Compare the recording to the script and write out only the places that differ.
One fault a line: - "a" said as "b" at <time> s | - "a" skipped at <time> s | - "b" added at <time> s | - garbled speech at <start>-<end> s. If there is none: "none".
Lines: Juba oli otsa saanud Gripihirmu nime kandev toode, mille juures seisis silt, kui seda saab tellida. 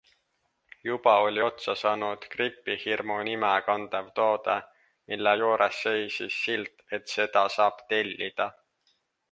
- "kui" said as "et" at 7.0 s